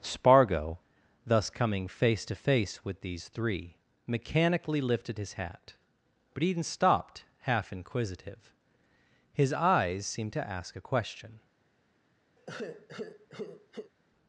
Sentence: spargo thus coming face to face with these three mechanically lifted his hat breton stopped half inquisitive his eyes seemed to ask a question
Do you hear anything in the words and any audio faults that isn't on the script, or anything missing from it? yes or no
yes